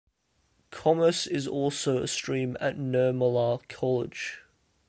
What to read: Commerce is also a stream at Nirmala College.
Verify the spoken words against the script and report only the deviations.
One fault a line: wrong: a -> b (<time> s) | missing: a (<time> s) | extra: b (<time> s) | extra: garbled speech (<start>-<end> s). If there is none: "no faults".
no faults